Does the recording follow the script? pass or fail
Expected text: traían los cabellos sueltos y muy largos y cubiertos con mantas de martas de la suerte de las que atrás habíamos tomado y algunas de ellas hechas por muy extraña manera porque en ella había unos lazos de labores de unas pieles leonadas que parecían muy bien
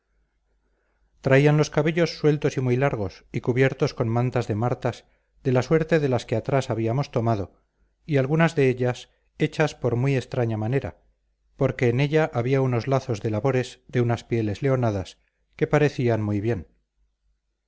pass